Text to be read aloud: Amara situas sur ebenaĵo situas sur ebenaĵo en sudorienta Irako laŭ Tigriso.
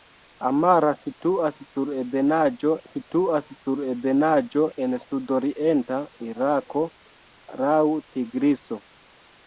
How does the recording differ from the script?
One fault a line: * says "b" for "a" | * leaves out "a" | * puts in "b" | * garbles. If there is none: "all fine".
all fine